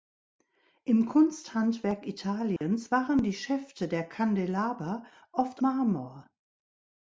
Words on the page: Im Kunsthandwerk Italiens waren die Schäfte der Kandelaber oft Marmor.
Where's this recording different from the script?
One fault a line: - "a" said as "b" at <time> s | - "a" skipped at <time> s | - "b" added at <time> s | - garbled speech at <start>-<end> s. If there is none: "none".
none